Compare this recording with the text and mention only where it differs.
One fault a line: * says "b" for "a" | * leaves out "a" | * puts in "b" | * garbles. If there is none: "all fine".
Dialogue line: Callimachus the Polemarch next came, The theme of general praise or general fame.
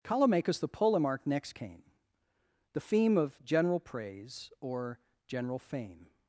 all fine